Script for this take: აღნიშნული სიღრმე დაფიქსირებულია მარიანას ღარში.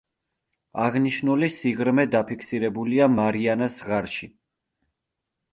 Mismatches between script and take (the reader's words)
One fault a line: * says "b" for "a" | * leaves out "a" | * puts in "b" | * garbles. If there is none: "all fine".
all fine